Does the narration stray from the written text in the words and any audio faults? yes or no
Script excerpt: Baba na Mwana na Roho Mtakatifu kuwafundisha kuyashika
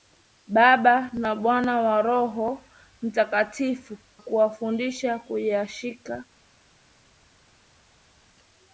no